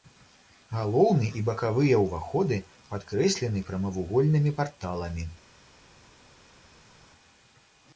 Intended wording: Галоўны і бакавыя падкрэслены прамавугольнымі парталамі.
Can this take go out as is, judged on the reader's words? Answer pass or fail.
fail